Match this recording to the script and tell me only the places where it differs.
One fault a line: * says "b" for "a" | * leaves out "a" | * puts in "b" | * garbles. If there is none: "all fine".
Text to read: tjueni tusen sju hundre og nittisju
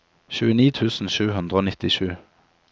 all fine